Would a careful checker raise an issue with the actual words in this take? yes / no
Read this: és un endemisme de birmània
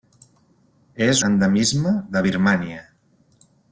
yes